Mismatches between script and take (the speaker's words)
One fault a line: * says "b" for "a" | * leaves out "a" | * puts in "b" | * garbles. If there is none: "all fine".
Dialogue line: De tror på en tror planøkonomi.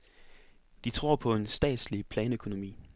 * says "statslig" for "tror"